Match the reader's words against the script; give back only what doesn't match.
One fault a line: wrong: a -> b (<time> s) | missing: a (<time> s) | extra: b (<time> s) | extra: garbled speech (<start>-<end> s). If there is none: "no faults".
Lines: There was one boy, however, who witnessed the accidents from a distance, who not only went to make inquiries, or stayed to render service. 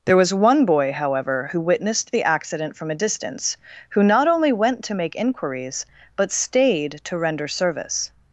wrong: accidents -> accident (2.2 s)
wrong: or -> but (6.1 s)